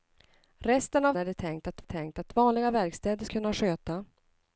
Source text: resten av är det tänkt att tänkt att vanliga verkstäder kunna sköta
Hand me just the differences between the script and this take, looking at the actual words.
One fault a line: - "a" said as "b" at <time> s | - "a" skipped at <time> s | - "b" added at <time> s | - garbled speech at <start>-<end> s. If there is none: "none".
none